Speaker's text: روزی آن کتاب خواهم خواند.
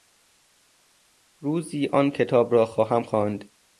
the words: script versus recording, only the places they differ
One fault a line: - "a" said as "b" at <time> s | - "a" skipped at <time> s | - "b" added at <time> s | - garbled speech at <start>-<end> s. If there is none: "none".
- "را" added at 2.5 s